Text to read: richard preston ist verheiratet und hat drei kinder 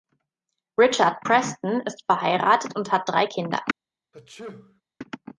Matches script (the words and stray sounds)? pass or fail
fail